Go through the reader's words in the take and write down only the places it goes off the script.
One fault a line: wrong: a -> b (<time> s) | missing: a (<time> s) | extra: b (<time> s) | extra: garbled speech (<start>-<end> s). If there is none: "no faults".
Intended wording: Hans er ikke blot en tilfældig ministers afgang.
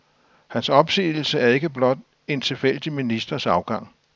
extra: opsigelse (0.7 s)